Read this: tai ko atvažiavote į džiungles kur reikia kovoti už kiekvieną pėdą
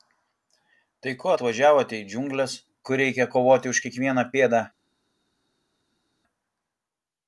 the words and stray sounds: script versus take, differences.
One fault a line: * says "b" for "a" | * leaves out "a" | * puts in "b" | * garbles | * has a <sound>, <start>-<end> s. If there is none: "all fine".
all fine